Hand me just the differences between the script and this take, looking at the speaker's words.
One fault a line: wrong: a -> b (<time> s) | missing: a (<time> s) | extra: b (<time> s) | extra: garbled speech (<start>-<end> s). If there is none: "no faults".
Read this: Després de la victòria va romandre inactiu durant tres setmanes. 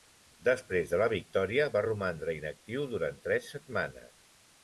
no faults